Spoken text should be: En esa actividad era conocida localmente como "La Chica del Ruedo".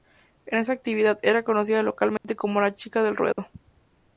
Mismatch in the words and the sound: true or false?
true